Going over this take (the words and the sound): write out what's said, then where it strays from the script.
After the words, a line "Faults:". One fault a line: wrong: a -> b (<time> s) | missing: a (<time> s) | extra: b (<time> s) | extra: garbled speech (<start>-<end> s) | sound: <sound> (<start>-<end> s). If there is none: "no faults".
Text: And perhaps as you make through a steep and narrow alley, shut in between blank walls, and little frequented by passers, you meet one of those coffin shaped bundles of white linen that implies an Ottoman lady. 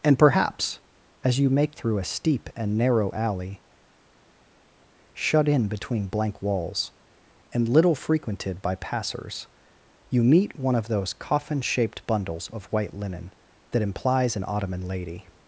And perhaps as you make through a steep and narrow alley, shut in between blank walls, and little frequented by passers, you meet one of those coffin shaped bundles of white linen that implies an Ottoman lady.
Faults:
no faults